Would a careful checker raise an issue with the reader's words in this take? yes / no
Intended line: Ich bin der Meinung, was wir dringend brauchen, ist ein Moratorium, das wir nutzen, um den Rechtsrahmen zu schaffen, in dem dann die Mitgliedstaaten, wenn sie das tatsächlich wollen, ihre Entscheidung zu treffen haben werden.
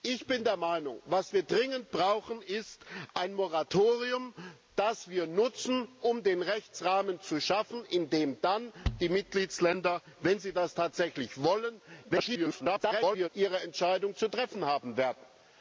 yes